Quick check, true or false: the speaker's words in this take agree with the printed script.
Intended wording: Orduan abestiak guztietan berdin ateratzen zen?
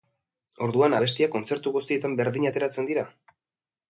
false